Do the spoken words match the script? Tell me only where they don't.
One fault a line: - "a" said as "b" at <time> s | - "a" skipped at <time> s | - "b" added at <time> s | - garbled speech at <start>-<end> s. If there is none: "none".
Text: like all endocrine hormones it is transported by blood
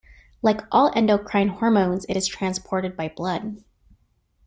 none